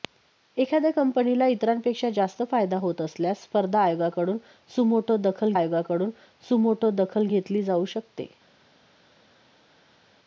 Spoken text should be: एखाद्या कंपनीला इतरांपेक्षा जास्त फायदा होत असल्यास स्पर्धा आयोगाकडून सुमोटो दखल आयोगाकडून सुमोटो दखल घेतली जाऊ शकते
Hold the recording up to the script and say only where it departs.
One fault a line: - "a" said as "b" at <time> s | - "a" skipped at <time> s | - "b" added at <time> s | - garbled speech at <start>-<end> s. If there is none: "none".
none